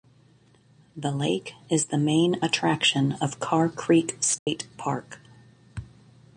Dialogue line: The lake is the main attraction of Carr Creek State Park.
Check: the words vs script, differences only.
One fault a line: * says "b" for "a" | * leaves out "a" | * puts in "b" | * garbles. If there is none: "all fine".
all fine